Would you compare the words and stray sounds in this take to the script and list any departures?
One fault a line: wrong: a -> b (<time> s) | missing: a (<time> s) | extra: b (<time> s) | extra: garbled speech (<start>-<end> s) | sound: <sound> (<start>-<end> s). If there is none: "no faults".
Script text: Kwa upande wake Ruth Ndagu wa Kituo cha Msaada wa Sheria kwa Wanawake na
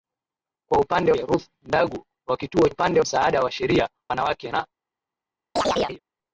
missing: wake (1.1 s)
wrong: cha -> upande (2.7 s)
missing: kwa (3.9 s)
sound: chirp (5.6-6.0 s)